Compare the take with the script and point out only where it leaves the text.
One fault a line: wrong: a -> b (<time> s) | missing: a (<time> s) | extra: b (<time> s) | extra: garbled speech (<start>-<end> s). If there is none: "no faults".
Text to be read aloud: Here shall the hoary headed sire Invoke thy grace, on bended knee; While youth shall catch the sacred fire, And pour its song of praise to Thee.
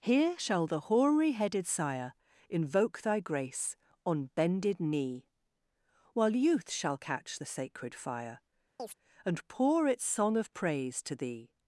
no faults